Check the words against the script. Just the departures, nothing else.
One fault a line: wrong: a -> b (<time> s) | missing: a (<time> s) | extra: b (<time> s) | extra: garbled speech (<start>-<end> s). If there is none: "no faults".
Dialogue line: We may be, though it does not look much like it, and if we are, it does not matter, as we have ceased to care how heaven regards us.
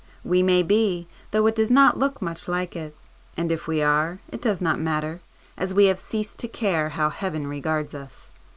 no faults